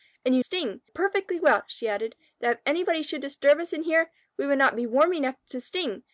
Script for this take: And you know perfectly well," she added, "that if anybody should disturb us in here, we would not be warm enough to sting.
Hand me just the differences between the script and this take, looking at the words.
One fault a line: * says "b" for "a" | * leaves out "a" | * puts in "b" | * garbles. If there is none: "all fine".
* says "sting" for "know"